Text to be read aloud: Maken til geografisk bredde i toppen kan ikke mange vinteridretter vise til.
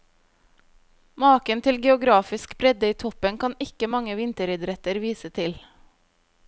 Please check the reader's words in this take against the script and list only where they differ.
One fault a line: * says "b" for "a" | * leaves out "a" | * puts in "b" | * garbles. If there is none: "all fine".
all fine